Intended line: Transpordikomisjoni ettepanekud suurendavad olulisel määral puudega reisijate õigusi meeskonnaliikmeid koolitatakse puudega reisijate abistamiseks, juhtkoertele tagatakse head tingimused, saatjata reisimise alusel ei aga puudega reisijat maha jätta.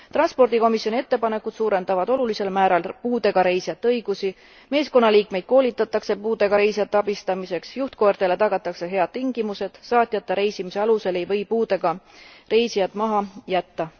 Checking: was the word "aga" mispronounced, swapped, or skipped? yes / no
yes